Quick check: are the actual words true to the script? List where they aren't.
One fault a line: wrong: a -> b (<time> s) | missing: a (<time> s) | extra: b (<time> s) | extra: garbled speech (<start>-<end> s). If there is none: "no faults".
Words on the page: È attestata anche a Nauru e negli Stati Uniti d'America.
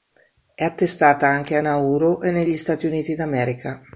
no faults